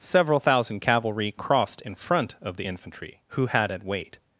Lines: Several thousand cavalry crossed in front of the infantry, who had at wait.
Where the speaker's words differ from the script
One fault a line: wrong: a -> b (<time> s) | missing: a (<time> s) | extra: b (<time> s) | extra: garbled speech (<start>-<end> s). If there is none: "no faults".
no faults